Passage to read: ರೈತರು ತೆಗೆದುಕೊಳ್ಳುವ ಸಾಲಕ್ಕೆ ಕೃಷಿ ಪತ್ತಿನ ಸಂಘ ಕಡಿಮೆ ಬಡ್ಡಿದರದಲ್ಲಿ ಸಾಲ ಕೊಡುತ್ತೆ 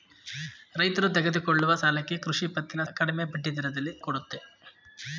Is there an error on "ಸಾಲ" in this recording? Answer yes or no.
yes